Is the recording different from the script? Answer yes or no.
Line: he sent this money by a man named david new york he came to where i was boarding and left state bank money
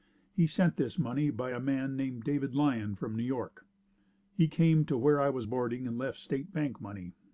yes